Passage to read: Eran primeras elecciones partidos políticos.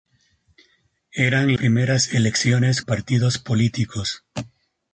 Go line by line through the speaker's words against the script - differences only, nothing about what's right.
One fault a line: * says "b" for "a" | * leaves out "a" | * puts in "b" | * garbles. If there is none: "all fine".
all fine